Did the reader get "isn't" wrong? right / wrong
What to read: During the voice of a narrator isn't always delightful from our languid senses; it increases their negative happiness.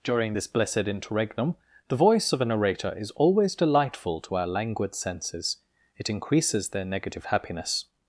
wrong